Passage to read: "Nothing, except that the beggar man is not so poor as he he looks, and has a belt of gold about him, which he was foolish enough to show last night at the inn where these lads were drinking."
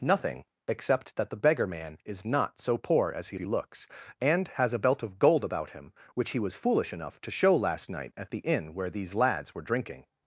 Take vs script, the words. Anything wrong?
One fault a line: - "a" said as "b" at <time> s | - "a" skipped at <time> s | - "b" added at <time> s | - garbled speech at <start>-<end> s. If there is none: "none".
none